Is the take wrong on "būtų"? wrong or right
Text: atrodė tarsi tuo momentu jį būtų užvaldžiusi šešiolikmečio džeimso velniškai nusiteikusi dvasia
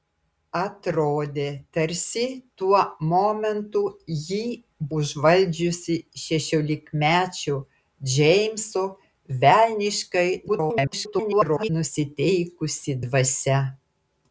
wrong